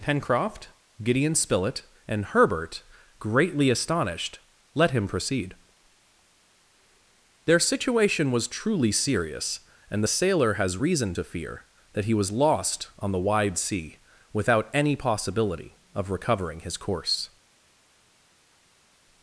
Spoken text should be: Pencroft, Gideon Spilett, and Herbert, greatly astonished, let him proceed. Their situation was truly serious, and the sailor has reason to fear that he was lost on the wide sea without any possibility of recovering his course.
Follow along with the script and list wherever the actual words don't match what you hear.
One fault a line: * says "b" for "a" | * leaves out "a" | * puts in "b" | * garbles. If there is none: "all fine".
all fine